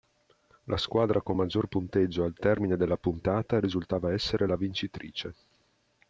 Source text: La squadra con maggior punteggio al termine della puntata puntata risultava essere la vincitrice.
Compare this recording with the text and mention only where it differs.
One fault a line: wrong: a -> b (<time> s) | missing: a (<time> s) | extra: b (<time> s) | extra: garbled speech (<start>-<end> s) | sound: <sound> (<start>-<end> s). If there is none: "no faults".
missing: puntata (3.6 s)